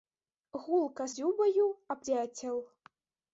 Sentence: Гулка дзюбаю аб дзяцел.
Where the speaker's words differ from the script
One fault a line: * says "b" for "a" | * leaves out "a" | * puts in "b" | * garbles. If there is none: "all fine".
all fine